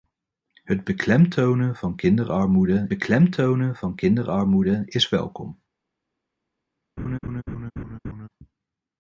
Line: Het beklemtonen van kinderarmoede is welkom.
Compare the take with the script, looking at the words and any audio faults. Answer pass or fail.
fail